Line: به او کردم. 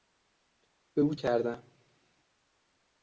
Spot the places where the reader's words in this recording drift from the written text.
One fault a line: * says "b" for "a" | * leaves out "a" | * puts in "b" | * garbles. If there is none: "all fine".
all fine